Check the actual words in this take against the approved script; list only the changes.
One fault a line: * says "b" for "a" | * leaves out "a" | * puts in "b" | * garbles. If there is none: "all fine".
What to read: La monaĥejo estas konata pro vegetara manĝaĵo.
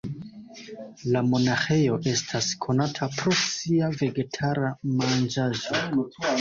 * puts in "sia"